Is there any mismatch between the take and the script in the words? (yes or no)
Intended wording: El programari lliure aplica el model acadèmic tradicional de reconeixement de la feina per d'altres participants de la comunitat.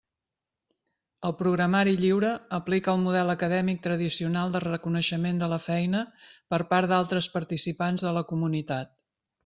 yes